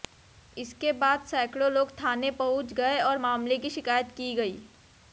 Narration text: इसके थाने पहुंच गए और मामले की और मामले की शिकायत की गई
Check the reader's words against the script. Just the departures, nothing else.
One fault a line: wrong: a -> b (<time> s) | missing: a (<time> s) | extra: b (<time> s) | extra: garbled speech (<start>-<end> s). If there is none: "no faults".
extra: बाद सैकड़ों लोग (0.9 s)
missing: और मामले की (3.7 s)